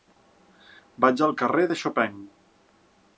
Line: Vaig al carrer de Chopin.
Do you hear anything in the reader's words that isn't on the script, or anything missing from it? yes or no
no